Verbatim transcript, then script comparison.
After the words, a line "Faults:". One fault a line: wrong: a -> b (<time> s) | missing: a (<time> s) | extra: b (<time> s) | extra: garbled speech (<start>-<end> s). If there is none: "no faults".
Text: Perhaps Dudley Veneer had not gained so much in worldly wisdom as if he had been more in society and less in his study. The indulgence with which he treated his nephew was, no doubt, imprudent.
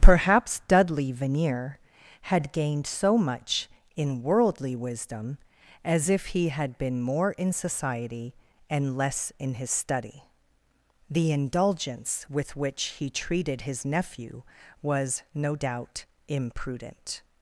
Perhaps Dudley Veneer had gained so much in worldly wisdom as if he had been more in society and less in his study. The indulgence with which he treated his nephew was, no doubt, imprudent.
Faults:
missing: not (2.5 s)